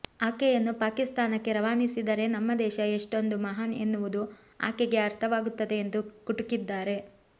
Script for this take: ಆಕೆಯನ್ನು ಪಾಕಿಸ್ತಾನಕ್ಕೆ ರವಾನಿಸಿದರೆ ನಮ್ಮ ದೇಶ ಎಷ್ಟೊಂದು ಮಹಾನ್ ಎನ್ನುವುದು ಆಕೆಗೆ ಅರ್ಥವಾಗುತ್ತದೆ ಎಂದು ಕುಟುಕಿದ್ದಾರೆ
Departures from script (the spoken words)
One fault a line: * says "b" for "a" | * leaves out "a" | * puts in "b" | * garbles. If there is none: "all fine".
all fine